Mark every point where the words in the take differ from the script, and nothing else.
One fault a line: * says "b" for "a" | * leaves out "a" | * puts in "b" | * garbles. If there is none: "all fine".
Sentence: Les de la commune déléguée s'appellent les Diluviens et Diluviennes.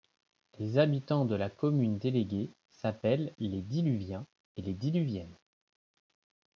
* puts in "habitants"
* puts in "les"